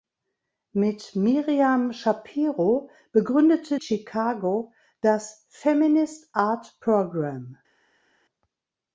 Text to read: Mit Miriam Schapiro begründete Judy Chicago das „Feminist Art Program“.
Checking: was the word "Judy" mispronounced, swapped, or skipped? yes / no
yes